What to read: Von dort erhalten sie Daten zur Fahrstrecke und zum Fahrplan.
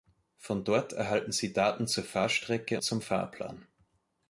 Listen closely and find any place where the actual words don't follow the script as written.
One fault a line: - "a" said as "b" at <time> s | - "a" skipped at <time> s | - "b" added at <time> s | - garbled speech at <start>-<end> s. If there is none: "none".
- "und" skipped at 2.8 s